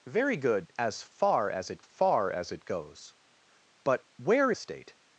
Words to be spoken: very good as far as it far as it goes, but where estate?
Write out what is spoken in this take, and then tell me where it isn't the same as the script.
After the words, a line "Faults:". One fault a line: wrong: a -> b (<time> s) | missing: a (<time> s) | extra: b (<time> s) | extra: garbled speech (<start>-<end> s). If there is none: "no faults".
very good as far as it far as it goes, but where estate?
Faults:
no faults